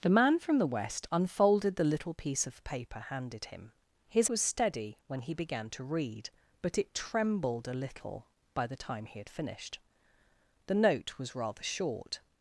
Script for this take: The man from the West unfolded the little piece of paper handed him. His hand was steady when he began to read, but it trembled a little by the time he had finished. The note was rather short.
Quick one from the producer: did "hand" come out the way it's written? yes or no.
no